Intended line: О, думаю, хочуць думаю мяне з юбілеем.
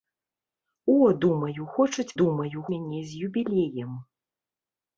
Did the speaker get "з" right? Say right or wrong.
right